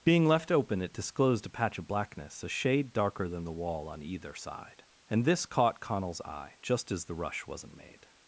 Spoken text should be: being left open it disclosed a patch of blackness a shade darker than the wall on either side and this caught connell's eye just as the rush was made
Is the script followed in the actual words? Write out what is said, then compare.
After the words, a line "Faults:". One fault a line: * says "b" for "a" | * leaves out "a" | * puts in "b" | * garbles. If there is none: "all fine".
being left open it disclosed a patch of blackness a shade darker than the wall on either side and this caught connell's eye just as the rush wasn't made
Faults:
* says "wasn't" for "was"